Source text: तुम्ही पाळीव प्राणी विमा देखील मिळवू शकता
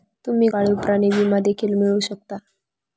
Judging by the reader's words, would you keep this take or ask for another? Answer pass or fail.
pass